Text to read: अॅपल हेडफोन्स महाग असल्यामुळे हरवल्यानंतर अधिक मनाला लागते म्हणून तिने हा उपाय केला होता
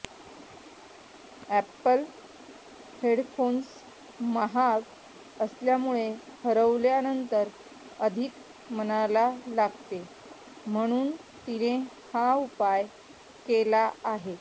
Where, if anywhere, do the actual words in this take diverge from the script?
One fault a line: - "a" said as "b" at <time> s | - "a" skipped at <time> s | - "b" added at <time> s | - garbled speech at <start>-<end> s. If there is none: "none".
- "होता" said as "आहे" at 14.1 s